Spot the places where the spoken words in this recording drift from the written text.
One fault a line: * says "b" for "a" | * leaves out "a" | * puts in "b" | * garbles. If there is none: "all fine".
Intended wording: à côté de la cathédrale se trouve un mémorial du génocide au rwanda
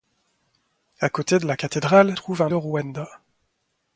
* leaves out "se"
* leaves out "mémorial du génocide"